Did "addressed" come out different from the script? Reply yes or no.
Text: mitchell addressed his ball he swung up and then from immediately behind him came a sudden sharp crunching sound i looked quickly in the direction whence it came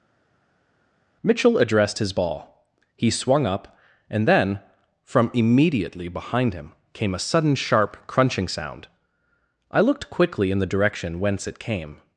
no